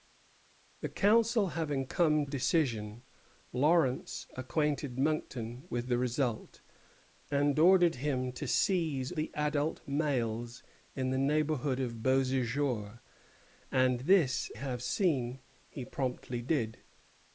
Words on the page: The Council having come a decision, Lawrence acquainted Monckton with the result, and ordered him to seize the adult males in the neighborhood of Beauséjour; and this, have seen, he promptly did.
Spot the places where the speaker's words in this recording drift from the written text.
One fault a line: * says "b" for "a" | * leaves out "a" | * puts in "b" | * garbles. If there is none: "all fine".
all fine